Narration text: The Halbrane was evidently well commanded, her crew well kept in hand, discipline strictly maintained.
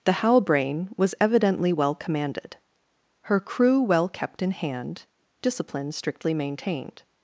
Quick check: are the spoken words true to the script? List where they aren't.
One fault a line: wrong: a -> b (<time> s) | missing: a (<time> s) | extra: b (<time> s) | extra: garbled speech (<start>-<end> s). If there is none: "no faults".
no faults